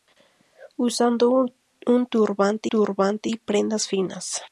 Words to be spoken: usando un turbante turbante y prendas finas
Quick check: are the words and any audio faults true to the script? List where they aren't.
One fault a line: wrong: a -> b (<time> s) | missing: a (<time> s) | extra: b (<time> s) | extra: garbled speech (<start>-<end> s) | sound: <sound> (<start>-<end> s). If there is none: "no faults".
no faults